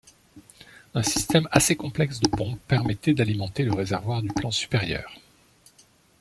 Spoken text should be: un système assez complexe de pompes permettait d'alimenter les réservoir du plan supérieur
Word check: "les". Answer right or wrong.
wrong